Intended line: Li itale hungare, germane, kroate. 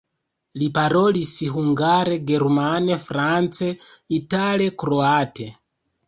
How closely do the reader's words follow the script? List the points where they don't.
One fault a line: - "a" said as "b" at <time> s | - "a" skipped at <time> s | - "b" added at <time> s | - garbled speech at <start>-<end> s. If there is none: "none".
- "itale" said as "parolis" at 0.7 s
- "france itale" added at 3.0 s